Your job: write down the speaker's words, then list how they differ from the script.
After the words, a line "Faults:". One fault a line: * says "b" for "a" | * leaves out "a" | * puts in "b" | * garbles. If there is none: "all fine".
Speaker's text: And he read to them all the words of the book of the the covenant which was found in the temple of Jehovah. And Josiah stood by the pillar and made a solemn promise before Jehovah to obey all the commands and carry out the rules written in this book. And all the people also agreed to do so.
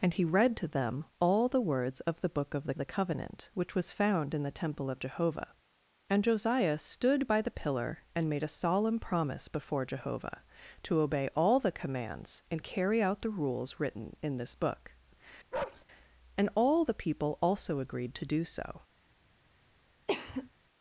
And he read to them all the words of the book of the the covenant which was found in the temple of Jehovah. And Josiah stood by the pillar and made a solemn promise before Jehovah to obey all the commands and carry out the rules written in this book. And all the people also agreed to do so.
Faults:
all fine